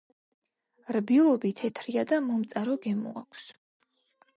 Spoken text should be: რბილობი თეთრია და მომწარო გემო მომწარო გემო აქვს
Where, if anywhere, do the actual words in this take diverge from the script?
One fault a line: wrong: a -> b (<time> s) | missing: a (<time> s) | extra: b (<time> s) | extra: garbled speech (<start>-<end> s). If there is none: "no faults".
missing: მომწარო გემო (3.2 s)